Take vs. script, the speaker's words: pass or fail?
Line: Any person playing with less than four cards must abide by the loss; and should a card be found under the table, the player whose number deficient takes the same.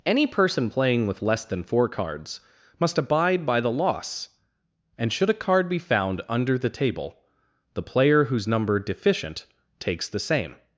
pass